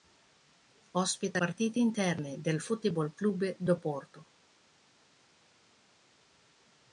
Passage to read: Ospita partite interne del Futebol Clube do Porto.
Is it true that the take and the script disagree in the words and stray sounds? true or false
false